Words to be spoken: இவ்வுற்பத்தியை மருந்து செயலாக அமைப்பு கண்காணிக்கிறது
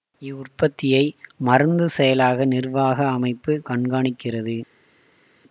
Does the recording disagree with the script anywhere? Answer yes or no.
yes